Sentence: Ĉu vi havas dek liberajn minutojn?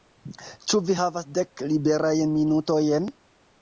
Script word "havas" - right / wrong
right